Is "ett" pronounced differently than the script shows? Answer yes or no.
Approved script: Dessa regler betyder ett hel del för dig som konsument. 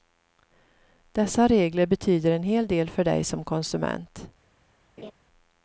yes